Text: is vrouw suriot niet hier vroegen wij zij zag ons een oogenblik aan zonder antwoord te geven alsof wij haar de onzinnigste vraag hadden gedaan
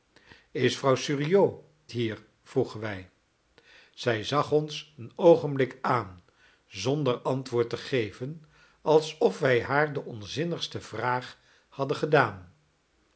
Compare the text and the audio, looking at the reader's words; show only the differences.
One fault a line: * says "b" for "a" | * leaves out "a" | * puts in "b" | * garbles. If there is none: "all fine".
* leaves out "niet"